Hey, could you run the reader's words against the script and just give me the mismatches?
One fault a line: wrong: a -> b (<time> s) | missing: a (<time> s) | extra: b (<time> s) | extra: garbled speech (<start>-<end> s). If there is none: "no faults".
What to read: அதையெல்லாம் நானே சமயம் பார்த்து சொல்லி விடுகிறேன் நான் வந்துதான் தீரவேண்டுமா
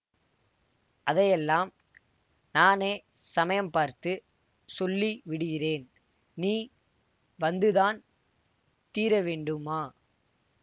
wrong: நான் -> நீ (6.4 s)